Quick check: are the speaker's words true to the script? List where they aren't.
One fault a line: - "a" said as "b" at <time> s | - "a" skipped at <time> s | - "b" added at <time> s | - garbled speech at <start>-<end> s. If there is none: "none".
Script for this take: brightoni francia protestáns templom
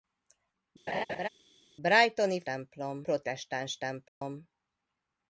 - "francia" said as "templom" at 2.5 s